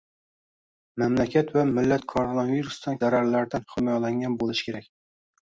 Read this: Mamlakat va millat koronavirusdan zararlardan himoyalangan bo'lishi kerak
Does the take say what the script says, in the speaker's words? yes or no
yes